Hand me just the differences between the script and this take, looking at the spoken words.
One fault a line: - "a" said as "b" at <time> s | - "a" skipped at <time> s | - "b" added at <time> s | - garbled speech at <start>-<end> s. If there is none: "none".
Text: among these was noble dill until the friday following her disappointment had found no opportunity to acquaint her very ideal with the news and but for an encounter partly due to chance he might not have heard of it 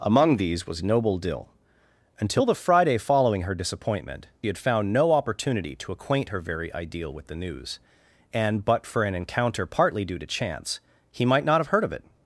none